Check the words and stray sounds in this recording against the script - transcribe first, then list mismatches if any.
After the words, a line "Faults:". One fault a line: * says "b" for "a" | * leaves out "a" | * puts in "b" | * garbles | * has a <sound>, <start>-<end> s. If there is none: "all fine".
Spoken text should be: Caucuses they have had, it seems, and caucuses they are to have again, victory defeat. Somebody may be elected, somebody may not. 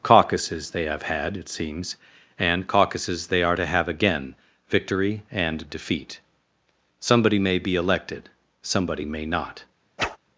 Caucuses they have had, it seems, and caucuses they are to have again, victory and defeat. Somebody may be elected, somebody may not.
Faults:
* puts in "and"
* has a whoosh, 10.0-10.2 s